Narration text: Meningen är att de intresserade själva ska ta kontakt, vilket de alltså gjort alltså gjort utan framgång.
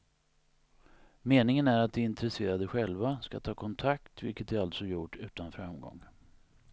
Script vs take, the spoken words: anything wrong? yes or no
yes